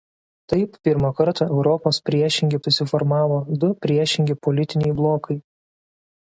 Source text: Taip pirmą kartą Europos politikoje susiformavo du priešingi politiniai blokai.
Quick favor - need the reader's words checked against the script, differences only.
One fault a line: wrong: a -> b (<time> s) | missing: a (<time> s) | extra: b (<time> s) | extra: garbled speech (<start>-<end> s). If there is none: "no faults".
wrong: politikoje -> priešingi (2.1 s)